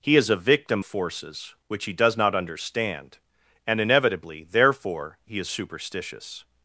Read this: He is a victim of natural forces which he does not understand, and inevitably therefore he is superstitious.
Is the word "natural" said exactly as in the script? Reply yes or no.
no